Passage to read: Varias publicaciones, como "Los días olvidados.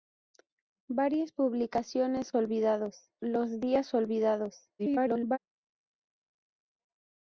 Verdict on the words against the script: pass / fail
fail